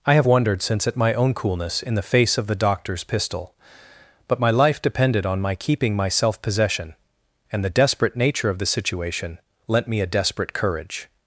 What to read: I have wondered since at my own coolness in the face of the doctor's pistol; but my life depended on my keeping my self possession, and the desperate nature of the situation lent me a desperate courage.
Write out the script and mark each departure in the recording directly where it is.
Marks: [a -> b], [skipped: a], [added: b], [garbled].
I have wondered since at my own coolness in the face of the doctor's pistol; but my life depended on my keeping my self possession, and the desperate nature of the situation lent me a desperate courage.